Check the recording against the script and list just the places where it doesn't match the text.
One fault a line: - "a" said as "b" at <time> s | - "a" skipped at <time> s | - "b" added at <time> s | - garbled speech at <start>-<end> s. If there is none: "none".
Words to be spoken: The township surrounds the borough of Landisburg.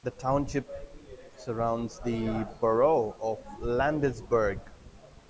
none